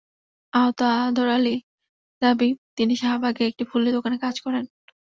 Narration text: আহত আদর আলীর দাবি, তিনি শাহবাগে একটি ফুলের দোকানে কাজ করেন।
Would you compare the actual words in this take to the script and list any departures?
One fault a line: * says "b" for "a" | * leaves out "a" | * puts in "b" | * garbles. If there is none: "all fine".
all fine